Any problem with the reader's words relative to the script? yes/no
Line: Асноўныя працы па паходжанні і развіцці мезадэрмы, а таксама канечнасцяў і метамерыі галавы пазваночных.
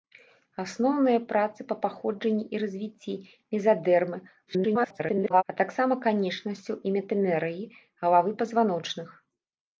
yes